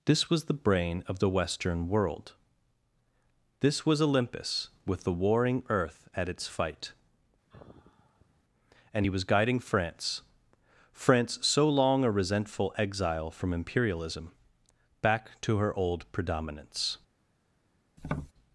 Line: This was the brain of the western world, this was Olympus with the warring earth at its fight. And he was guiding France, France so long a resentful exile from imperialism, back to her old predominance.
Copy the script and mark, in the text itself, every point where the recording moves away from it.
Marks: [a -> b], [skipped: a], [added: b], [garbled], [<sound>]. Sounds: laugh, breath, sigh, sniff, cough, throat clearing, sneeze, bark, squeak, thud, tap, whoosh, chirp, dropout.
This was the brain of the western world, this was Olympus with the warring earth at its fight. [sigh] And he was guiding France, France so long a resentful exile from imperialism, back to her old predominance. [tap]